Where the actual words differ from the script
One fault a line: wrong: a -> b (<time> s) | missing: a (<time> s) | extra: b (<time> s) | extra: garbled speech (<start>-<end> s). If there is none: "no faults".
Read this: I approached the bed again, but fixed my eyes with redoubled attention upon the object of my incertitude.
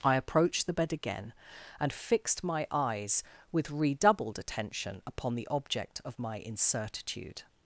wrong: but -> and (1.8 s)